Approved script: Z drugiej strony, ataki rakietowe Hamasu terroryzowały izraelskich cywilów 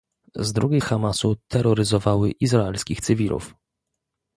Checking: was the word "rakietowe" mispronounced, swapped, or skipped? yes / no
yes